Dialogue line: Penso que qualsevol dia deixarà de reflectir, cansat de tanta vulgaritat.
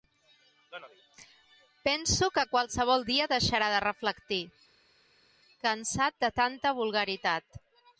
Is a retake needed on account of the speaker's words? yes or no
no